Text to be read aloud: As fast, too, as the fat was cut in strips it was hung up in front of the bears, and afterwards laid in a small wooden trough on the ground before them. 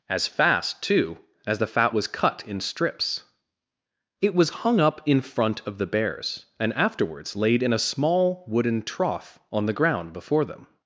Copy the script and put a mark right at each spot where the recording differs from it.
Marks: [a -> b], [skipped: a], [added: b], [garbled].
As fast, too, as the fat was cut in strips it was hung up in front of the bears, and afterwards laid in a small wooden trough on the ground before them.